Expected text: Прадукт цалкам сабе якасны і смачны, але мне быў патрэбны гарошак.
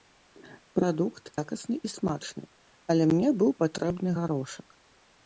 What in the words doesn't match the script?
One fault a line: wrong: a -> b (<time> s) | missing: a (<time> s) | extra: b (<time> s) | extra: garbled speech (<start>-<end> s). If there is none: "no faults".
missing: цалкам сабе (1.2 s)